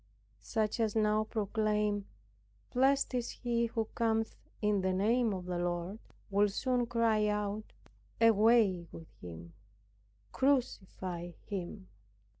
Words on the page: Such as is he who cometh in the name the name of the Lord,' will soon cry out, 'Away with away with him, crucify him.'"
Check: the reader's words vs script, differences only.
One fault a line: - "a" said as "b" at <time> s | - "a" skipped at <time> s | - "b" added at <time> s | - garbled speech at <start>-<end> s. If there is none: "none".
- "now proclaim Blessed" added at 0.9 s
- "the name" skipped at 5.3 s
- "away with" skipped at 9.1 s